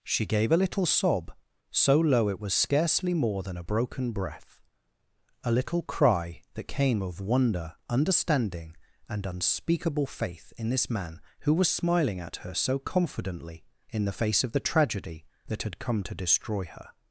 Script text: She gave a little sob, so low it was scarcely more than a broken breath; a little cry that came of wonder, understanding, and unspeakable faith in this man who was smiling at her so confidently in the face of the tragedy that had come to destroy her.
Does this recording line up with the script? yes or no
yes